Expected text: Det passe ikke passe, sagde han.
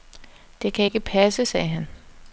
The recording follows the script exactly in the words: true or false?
false